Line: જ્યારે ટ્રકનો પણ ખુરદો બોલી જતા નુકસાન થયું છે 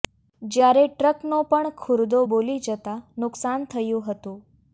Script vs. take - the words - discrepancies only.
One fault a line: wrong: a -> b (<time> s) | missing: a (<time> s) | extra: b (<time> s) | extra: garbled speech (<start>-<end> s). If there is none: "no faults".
wrong: છે -> હતું (4.1 s)